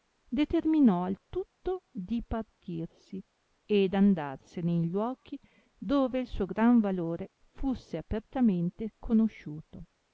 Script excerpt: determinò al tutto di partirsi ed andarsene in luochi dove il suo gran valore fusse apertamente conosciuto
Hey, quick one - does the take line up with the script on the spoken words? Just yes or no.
yes